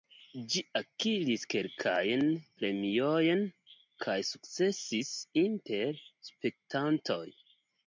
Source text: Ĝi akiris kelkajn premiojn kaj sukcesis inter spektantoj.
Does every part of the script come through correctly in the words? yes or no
yes